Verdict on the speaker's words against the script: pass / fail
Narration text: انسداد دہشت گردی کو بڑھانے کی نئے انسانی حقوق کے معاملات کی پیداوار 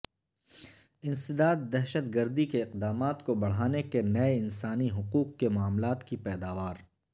fail